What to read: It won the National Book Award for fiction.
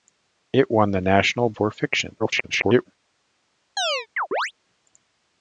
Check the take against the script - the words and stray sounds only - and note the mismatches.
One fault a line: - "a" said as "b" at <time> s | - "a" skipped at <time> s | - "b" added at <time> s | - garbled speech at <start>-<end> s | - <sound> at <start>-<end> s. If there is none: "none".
- "Book Award" skipped at 1.5 s
- garbled speech at 2.2-2.9 s
- chirp at 3.8-4.5 s